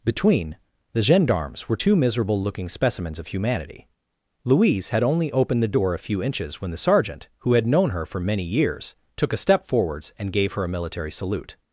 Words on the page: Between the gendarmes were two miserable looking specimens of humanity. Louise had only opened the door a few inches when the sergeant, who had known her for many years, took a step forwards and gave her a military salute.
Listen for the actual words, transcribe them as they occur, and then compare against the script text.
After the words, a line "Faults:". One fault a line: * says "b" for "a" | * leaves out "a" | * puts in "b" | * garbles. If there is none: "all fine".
Between the gendarmes were two miserable looking specimens of humanity. Louise had only opened the door a few inches when the sergeant, who had known her for many years, took a step forwards and gave her a military salute.
Faults:
all fine